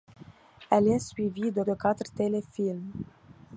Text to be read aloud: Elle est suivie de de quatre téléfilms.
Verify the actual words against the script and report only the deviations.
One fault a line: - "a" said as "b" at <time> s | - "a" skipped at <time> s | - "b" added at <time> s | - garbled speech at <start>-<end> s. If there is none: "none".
none